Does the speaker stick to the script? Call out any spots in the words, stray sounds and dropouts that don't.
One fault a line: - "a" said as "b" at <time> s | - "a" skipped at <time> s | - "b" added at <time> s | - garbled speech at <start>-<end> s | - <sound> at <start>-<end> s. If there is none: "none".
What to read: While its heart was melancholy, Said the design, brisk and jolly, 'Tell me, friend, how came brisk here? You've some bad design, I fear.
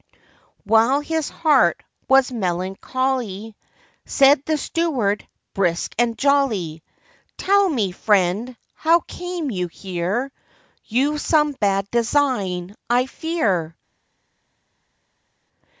- "its" said as "his" at 1.0 s
- "design" said as "steward" at 4.6 s
- "brisk" said as "you" at 9.5 s